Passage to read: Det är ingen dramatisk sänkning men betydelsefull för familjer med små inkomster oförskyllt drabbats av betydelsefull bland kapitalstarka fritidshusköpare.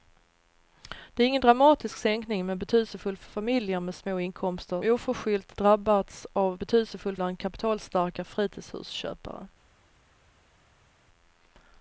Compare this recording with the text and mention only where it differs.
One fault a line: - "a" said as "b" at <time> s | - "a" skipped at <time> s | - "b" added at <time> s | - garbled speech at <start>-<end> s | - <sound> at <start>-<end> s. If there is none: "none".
none